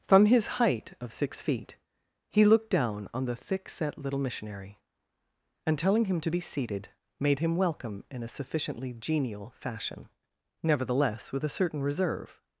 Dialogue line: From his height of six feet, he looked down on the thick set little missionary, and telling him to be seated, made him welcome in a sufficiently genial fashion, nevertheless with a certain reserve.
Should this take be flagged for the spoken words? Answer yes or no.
no